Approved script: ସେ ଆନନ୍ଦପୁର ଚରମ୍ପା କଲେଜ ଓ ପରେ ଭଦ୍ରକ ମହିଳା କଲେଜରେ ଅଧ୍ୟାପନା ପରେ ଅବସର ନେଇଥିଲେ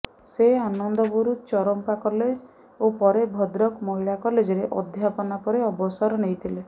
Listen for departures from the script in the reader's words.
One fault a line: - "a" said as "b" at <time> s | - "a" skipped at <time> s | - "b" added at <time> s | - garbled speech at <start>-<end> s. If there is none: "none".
none